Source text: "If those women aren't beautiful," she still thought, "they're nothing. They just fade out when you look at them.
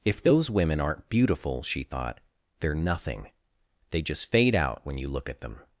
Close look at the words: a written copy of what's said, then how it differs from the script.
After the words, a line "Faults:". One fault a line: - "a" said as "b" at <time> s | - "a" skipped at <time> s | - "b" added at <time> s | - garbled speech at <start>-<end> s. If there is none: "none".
"If those women aren't beautiful," she thought, "they're nothing. They just fade out when you look at them.
Faults:
- "still" skipped at 1.8 s